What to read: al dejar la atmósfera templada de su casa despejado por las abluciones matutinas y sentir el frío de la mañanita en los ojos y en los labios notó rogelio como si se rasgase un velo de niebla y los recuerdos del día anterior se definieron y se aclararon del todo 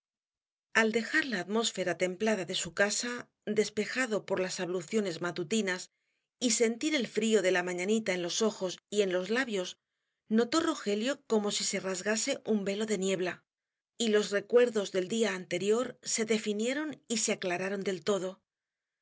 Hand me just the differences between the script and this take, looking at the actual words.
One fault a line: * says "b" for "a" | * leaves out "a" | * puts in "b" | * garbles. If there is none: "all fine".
all fine